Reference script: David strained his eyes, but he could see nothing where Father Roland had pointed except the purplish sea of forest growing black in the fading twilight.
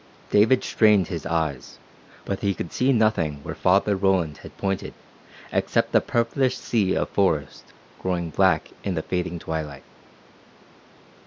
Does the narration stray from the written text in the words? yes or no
no